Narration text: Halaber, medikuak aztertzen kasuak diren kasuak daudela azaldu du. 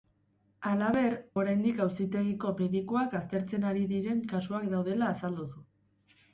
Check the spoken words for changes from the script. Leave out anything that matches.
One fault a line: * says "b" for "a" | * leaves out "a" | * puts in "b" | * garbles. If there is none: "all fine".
* puts in "oraindik auzitegiko"
* says "ari" for "kasuak"